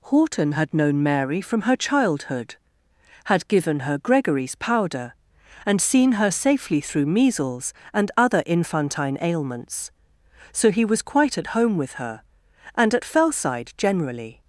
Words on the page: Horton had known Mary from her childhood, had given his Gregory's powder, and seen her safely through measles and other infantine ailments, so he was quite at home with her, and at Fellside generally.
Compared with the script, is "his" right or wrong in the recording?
wrong